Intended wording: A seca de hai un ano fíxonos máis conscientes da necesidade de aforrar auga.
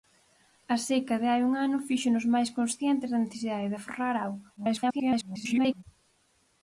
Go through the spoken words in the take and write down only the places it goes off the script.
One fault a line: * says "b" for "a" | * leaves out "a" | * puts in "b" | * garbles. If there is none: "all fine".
* garbles